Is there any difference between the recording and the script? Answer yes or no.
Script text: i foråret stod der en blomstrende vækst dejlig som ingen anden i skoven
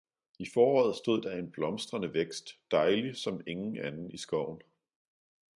no